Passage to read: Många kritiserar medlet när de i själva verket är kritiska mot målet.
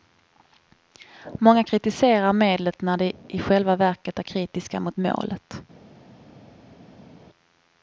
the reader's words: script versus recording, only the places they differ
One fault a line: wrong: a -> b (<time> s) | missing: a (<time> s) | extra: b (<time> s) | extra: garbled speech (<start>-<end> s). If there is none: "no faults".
no faults